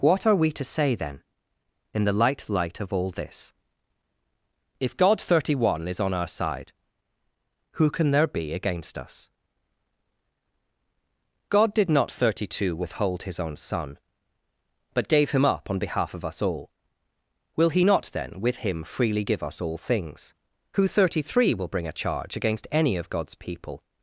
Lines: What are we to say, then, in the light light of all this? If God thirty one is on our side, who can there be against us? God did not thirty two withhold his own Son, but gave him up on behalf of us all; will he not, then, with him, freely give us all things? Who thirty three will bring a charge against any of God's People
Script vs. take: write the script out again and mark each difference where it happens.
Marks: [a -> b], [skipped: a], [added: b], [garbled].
What are we to say, then, in the light light of all this? If God thirty one is on our side, who can there be against us? God did not thirty two withhold his own Son, but gave him up on behalf of us all; will he not, then, with him, freely give us all things? Who thirty three will bring a charge against any of God's People